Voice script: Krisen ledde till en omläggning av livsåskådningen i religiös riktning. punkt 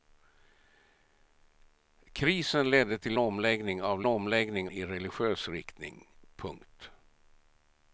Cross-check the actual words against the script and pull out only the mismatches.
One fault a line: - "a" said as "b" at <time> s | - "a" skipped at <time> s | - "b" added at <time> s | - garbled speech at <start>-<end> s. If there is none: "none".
- "en" skipped at 3.2 s
- "livsåskådningen" said as "omläggning" at 4.1 s